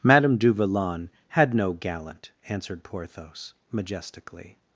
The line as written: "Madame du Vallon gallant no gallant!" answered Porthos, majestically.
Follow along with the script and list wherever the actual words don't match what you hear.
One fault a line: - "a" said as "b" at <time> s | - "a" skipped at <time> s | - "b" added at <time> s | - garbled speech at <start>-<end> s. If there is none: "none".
- "gallant" said as "had" at 1.3 s